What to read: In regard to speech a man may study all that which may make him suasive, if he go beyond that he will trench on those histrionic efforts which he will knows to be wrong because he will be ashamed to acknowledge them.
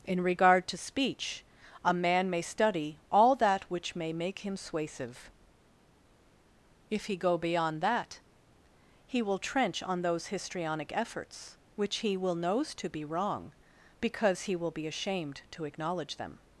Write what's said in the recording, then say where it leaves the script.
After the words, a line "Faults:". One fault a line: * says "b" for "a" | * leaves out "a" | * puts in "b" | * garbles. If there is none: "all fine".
In regard to speech a man may study all that which may make him suasive, if he go beyond that he will trench on those histrionic efforts which he will knows to be wrong because he will be ashamed to acknowledge them.
Faults:
all fine